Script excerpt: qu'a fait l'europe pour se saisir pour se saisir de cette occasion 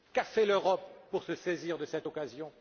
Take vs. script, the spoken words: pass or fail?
fail